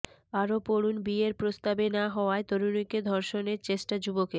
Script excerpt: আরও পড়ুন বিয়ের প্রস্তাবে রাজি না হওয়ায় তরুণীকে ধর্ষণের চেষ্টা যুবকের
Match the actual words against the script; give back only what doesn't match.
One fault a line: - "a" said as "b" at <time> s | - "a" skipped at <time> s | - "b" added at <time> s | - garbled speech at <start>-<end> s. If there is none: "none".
- "রাজি" skipped at 1.9 s